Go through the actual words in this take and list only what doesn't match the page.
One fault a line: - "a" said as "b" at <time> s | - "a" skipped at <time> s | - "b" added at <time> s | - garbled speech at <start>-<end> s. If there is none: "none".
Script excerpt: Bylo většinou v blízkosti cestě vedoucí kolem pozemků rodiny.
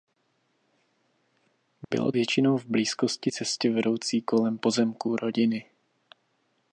none